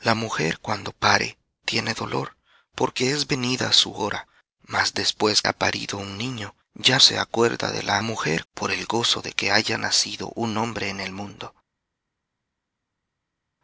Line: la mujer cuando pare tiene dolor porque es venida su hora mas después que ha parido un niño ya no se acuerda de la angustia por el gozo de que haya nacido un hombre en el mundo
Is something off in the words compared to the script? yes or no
yes